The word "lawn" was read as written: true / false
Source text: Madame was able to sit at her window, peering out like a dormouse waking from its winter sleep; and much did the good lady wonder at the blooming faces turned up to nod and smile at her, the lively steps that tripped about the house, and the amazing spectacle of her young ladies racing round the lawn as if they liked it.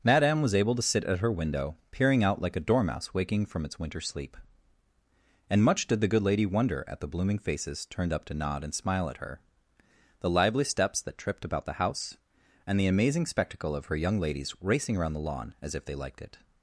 true